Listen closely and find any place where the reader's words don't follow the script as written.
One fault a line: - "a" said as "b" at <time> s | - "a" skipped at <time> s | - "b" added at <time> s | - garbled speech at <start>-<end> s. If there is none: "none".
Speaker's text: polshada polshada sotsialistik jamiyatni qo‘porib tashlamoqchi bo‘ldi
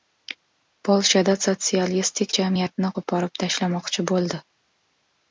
- "polshada" skipped at 1.3 s